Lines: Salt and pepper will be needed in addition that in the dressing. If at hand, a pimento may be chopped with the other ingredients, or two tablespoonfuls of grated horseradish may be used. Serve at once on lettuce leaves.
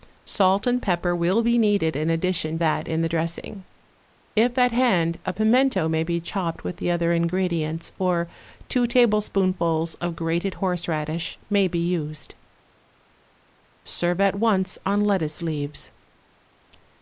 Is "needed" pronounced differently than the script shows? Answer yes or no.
no